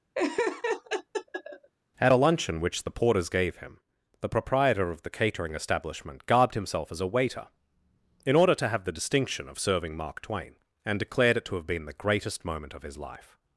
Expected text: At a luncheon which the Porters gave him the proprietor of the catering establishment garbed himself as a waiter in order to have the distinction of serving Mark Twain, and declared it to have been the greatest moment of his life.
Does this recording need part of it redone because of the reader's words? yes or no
no